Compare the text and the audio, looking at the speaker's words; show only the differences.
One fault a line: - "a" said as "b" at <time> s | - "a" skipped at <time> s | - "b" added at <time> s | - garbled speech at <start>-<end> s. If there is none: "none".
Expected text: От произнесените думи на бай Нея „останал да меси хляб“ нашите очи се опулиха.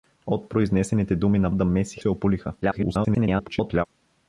- "бай Нея останал" skipped at 1.5 s
- "хляб нашите очи" skipped at 2.0 s
- garbled speech at 2.6-3.9 s